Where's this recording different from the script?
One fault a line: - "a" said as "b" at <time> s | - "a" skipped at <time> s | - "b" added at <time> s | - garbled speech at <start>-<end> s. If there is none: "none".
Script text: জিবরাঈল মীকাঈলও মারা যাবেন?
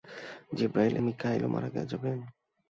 none